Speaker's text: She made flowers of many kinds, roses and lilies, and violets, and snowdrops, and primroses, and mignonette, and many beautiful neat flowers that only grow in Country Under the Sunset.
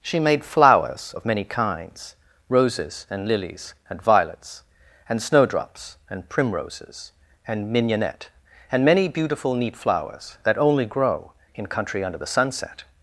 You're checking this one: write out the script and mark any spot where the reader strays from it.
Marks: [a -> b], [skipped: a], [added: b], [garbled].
She made flowers of many kinds, roses and lilies, and violets, and snowdrops, and primroses, and mignonette, and many beautiful neat flowers that only grow in Country Under the Sunset.